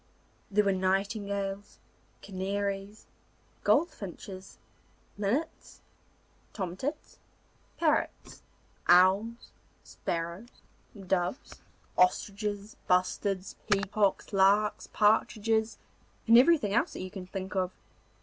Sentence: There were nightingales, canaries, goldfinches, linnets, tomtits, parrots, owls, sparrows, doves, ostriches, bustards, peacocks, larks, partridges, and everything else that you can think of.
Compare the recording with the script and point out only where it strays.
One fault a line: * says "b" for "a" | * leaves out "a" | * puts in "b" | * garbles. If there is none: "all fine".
all fine